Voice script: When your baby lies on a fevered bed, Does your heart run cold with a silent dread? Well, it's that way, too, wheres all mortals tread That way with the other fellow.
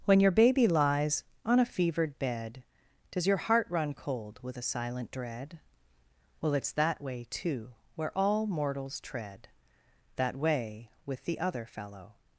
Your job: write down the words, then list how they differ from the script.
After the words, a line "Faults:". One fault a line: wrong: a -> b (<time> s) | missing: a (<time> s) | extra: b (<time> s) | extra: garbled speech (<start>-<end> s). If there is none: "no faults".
When your baby lies on a fevered bed, Does your heart run cold with a silent dread? Well, it's that way, too, where all mortals tread That way with the other fellow.
Faults:
wrong: wheres -> where (7.9 s)